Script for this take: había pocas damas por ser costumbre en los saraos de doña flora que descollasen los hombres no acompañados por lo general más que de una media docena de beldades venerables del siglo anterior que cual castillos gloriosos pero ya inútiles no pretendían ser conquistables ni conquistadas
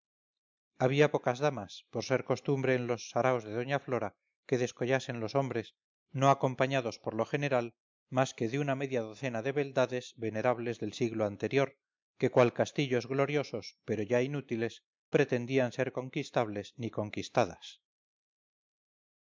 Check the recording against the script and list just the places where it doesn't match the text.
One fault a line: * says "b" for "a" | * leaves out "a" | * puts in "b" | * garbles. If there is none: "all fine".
* leaves out "no"